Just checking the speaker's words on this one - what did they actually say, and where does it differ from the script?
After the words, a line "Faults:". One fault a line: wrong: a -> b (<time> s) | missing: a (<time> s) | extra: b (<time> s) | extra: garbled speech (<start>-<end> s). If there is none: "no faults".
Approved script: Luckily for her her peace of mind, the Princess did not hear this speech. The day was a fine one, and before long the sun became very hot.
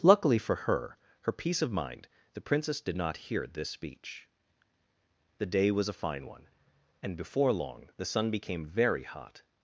Luckily for her her peace of mind, the Princess did not hear this speech. The day was a fine one, and before long the sun became very hot.
Faults:
no faults